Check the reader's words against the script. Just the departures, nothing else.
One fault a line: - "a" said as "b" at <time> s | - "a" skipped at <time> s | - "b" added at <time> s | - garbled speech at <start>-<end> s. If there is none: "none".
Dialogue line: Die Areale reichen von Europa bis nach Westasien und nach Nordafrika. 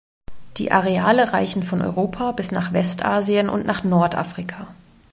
none